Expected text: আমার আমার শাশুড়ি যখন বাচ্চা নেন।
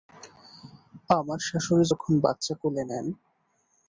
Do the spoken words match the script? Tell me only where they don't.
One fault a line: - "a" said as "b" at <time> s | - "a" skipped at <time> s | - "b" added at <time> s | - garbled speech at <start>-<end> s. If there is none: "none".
- "আমার" skipped at 1.4 s
- "কোলে" added at 2.6 s